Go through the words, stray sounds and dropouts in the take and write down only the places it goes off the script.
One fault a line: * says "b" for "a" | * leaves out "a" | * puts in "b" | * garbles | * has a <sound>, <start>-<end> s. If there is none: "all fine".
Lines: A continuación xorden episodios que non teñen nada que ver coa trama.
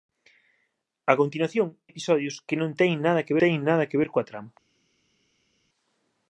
* leaves out "xorden"
* puts in "teñen nada que"